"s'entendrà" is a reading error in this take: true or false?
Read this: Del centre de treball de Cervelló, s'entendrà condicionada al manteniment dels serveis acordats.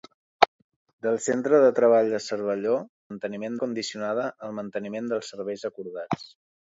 true